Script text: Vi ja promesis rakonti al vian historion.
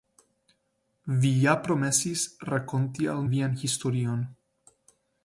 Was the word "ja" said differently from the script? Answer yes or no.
no